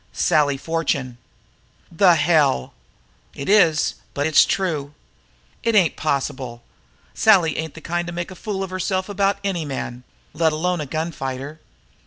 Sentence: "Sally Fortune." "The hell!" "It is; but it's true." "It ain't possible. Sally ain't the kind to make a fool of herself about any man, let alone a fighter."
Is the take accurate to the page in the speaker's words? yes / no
no